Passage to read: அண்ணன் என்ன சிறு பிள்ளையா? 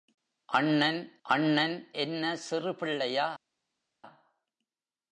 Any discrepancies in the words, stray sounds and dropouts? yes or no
yes